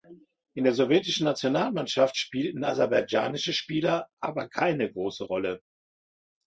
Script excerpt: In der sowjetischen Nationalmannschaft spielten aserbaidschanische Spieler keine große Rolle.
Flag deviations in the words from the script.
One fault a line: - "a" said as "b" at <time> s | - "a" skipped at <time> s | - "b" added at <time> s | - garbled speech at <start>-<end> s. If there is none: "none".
- "aber" added at 4.2 s